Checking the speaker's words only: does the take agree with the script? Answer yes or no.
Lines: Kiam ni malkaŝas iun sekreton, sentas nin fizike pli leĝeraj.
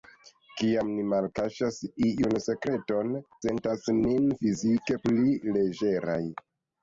yes